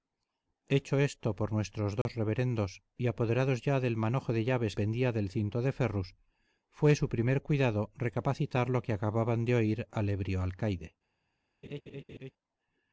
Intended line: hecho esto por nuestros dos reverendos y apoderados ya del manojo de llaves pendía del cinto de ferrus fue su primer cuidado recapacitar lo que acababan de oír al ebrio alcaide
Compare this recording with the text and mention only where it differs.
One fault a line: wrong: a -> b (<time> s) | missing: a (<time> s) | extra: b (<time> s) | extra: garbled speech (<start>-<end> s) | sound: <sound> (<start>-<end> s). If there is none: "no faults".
sound: dropout (2.0-2.1 s)
sound: laugh (11.6-12.3 s)